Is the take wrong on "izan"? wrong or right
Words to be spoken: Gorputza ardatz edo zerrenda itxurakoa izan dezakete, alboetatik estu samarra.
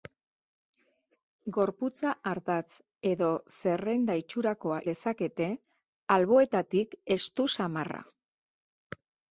wrong